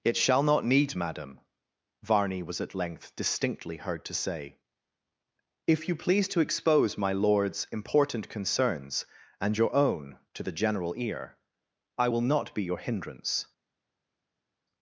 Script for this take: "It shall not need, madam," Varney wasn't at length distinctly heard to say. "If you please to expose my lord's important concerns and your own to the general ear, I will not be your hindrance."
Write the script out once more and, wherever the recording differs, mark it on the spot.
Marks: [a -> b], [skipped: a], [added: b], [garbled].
"It shall not need, madam," Varney [wasn't -> was] at length distinctly heard to say. "If you please to expose my lord's important concerns and your own to the general ear, I will not be your hindrance."